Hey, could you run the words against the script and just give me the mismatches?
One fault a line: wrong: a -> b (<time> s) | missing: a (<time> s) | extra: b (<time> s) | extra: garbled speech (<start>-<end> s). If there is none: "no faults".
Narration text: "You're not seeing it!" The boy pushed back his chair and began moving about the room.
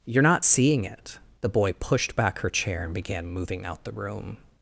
wrong: his -> her (2.4 s)
wrong: about -> out (3.6 s)